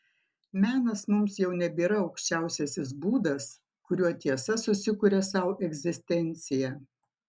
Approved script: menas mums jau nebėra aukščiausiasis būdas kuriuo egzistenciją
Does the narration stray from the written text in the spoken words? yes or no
yes